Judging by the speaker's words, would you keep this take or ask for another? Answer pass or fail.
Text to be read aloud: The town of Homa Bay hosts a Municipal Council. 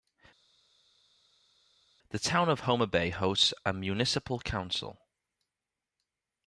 pass